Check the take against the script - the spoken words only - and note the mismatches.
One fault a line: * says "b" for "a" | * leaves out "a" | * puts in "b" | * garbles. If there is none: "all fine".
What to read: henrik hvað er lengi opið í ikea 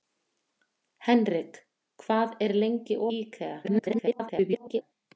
* leaves out "opið"
* garbles